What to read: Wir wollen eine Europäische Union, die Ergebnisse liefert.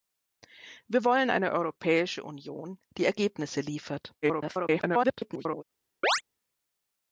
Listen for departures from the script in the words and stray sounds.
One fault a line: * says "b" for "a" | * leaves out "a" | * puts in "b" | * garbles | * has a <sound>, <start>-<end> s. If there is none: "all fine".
* garbles
* has a chirp, 6.0-6.2 s